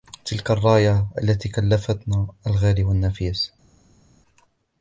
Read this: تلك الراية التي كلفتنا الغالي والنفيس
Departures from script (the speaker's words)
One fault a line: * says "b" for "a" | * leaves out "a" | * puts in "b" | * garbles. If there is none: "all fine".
all fine